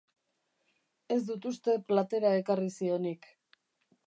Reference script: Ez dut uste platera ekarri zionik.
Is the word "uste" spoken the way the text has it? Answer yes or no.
yes